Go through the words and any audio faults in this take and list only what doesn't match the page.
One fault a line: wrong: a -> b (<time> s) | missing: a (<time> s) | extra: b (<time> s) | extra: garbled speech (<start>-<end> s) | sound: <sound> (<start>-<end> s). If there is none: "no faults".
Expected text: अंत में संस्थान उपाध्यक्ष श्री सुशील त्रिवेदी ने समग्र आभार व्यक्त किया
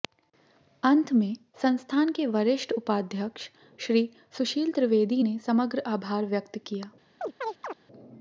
extra: के वरिष्ठ (2.1 s)
sound: chirp (7.2-7.8 s)